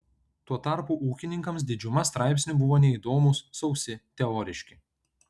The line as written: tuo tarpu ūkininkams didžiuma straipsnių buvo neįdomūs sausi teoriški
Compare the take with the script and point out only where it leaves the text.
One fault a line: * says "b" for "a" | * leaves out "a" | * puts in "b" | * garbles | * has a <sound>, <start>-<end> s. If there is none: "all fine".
all fine